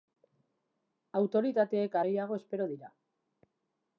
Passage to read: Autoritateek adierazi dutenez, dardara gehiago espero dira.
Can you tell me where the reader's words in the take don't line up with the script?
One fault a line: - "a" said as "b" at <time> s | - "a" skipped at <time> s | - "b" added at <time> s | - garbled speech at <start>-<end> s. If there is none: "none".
- "adierazi dutenez dardara" skipped at 2.0 s